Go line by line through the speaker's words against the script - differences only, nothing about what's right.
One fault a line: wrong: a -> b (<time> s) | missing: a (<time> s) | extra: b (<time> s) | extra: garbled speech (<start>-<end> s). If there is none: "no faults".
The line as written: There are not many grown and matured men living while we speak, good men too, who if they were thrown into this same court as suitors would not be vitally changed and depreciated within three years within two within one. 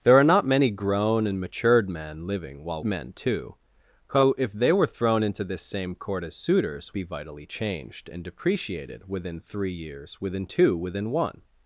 missing: we speak good (2.8 s)
missing: would not (7.0 s)